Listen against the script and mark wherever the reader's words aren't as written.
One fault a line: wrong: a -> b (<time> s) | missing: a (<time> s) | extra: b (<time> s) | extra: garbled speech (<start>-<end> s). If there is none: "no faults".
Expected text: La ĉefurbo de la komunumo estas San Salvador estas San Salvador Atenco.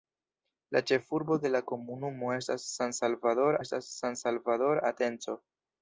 no faults